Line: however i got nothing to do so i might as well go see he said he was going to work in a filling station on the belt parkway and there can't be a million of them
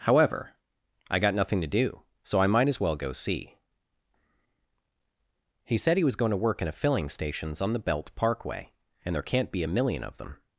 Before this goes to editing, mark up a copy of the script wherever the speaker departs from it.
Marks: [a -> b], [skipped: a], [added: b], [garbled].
however i got nothing to do so i might as well go see he said he was going to work in a filling [station -> stations] on the belt parkway and there can't be a million of them